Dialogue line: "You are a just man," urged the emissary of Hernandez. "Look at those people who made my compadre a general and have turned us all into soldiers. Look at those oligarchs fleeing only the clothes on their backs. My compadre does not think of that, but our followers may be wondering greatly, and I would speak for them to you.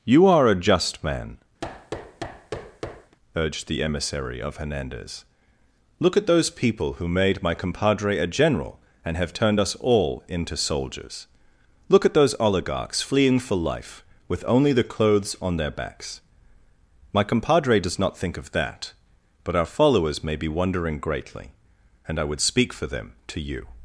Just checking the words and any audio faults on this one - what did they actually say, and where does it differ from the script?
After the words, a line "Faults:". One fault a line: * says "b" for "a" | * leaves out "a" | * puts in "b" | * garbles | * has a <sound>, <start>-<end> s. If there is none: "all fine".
"You are a just man," urged the emissary of Hernandez. "Look at those people who made my compadre a general and have turned us all into soldiers. Look at those oligarchs fleeing for life, with only the clothes on their backs. My compadre does not think of that, but our followers may be wondering greatly, and I would speak for them to you.
Faults:
* has a thud, 1.6-3.2 s
* puts in "for life with"